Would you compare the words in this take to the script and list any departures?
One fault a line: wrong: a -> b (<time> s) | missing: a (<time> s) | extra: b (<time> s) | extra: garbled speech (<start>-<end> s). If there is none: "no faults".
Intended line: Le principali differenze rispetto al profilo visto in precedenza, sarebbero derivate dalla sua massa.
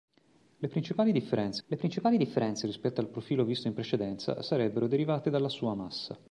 extra: le principali differenze (1.7 s)